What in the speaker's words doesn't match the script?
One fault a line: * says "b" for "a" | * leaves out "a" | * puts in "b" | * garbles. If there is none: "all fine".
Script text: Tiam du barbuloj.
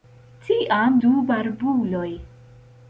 all fine